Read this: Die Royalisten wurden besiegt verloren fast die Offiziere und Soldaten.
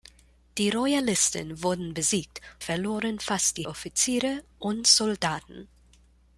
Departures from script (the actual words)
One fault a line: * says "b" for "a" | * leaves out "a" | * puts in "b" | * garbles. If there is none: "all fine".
all fine